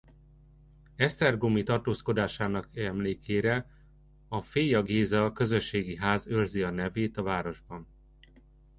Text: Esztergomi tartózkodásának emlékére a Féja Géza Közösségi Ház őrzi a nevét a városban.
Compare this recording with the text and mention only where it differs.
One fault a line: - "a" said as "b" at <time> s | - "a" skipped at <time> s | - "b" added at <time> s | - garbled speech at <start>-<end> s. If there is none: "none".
none